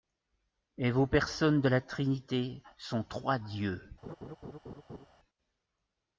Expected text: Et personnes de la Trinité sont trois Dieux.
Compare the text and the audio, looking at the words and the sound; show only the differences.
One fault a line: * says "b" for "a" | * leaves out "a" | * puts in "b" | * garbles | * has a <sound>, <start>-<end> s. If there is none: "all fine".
* puts in "vos"
* has a laugh, 4.0-5.1 s